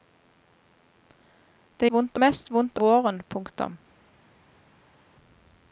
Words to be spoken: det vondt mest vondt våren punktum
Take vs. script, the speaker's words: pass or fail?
pass